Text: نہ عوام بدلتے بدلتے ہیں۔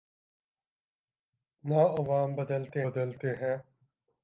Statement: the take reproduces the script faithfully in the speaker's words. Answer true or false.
true